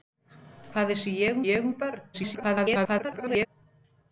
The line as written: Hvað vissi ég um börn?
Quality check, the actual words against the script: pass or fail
fail